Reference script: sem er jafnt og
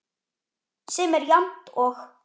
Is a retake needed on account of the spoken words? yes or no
no